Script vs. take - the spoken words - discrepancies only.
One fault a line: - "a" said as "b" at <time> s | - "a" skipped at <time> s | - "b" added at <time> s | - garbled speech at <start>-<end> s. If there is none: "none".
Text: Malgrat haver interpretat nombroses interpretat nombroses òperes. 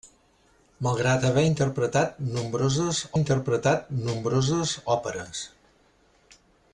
none